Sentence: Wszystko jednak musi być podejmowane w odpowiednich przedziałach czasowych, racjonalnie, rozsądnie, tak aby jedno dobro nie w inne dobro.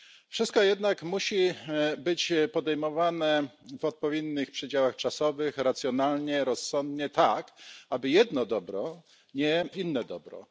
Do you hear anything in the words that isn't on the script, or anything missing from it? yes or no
no